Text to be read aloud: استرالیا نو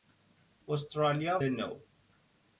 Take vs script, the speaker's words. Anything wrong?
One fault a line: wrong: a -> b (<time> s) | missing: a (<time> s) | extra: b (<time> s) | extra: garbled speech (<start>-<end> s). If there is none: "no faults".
no faults